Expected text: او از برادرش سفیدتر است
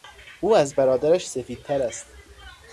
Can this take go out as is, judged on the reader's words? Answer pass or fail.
pass